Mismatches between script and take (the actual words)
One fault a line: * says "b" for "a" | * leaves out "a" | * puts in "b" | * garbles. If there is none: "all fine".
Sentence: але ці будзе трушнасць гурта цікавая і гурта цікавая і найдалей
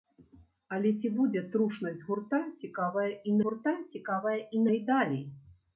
all fine